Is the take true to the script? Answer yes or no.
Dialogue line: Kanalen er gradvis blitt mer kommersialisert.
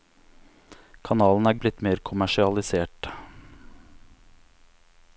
no